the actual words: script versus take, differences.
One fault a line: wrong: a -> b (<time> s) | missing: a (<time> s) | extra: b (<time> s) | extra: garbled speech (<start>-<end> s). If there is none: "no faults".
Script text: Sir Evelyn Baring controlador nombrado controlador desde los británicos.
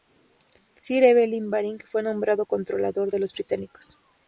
wrong: controlador -> fue (1.9 s)
wrong: desde -> de (3.1 s)